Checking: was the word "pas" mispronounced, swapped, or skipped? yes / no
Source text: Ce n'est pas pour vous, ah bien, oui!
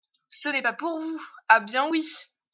no